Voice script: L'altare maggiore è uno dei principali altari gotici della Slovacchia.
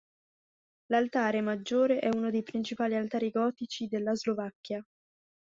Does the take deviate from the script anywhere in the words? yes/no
no